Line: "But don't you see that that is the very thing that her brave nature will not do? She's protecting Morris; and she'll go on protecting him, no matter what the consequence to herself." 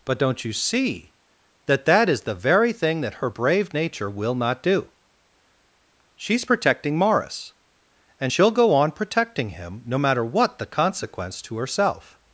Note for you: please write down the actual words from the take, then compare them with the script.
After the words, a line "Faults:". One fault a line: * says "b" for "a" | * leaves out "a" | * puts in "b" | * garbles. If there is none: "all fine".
"But don't you see that that is the very thing that her brave nature will not do? She's protecting Morris; and she'll go on protecting him, no matter what the consequence to herself."
Faults:
all fine